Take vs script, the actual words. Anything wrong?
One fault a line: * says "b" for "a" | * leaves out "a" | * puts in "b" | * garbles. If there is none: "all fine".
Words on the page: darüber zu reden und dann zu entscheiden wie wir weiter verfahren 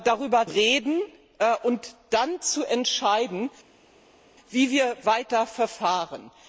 * leaves out "zu"